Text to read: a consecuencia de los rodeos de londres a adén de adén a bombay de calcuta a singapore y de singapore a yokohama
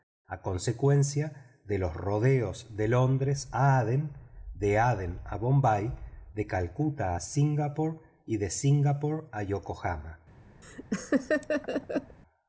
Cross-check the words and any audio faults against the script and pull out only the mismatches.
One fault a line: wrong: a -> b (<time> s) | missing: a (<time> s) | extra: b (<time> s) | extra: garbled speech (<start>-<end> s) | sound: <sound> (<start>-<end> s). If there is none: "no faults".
sound: laugh (10.6-12.2 s)